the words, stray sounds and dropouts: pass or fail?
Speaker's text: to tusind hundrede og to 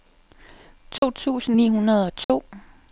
fail